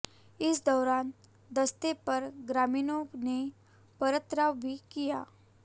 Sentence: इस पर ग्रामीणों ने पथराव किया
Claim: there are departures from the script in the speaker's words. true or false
true